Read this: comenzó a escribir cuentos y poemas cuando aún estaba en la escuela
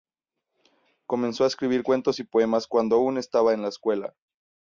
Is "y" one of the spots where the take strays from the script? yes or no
no